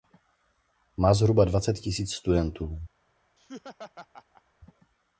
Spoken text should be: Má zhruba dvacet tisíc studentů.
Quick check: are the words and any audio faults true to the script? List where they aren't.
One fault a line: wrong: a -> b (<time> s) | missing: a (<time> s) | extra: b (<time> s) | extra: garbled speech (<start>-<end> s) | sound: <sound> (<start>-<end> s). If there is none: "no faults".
sound: laugh (3.4-4.4 s)